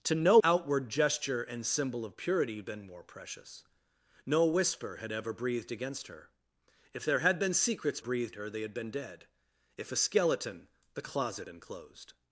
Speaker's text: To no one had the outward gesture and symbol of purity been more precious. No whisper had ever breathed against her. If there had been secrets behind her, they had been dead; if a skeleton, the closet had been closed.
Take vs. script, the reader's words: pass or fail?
fail